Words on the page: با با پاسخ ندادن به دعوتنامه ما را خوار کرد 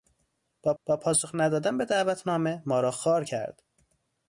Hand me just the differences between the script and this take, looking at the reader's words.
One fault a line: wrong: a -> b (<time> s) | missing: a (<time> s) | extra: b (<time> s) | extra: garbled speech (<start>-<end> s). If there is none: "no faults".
no faults